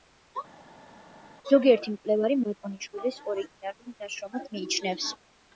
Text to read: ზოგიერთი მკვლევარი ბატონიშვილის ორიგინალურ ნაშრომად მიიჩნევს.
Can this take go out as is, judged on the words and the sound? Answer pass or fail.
pass